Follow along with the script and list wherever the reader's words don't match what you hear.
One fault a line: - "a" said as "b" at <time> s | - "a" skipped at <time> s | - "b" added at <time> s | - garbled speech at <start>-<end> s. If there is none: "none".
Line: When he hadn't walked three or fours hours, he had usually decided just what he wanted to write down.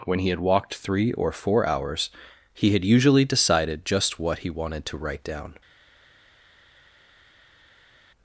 - "hadn't" said as "had" at 0.3 s
- "fours" said as "four" at 1.3 s